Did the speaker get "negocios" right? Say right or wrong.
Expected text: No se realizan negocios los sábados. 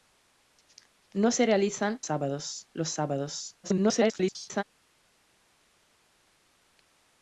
wrong